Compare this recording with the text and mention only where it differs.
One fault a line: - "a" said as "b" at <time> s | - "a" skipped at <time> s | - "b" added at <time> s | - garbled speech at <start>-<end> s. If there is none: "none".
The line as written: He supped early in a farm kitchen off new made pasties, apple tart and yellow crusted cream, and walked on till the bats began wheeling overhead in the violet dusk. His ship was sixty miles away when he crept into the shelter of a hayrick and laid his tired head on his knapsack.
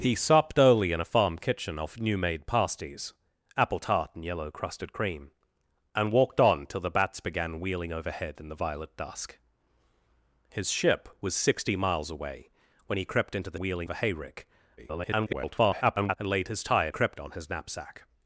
- "shelter" said as "wheeling" at 13.6 s
- garbled speech at 14.8-16.2 s
- "head" said as "crept" at 16.9 s